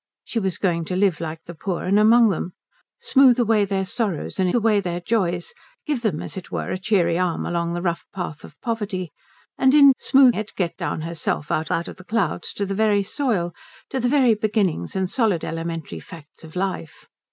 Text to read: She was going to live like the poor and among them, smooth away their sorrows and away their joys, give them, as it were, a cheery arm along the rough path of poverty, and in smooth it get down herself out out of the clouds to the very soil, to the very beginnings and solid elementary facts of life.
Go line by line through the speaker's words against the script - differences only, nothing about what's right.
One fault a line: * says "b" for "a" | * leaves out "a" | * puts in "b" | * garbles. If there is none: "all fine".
all fine